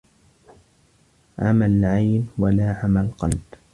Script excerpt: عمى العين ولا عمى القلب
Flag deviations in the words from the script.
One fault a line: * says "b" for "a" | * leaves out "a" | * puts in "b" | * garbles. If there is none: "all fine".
all fine